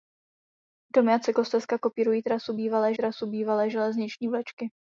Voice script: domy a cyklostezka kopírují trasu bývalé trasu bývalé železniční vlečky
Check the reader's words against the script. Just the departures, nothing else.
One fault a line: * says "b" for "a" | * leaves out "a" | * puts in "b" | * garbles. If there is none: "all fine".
all fine